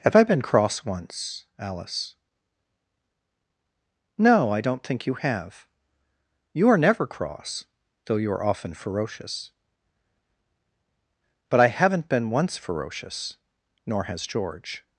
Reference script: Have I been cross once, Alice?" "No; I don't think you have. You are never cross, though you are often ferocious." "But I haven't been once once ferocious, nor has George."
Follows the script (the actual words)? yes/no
no